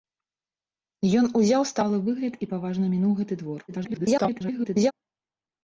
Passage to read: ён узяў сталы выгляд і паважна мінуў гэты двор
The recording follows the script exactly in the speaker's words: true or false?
false